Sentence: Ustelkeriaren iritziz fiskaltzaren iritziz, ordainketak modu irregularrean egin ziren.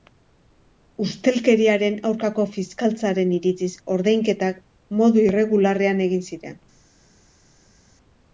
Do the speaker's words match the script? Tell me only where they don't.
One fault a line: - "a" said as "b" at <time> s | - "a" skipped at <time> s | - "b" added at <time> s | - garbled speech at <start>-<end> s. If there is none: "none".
- "iritziz" said as "aurkako" at 2.1 s